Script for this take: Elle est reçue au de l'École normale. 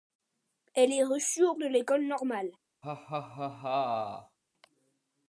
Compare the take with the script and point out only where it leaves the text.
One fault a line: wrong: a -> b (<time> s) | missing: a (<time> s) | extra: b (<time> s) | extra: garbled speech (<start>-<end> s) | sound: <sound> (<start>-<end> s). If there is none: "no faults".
sound: laugh (2.8-4.4 s)